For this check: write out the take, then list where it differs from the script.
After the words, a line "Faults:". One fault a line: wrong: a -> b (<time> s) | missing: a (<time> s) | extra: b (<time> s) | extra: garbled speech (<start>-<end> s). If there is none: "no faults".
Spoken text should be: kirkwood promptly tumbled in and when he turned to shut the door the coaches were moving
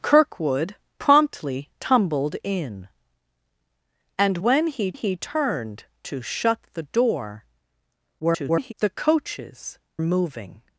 kirkwood promptly tumbled in and when he he turned to shut the door [garbled] the coaches moving
Faults:
extra: he (4.9 s)
extra: garbled speech (8.2-8.7 s)
missing: were (9.8 s)